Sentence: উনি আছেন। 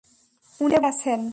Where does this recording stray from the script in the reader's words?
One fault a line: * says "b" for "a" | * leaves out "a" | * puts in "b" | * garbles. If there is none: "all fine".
all fine